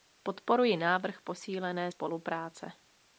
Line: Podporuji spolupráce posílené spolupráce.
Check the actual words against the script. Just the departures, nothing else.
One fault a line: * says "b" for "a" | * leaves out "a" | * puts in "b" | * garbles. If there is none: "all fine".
* says "návrh" for "spolupráce"